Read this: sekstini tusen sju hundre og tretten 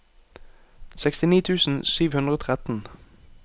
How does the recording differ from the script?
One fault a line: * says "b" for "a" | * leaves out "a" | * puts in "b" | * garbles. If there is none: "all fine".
all fine